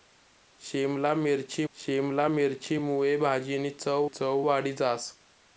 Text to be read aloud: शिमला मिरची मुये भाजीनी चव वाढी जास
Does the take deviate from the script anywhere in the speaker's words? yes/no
yes